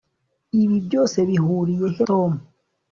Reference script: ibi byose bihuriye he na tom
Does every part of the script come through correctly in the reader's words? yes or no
no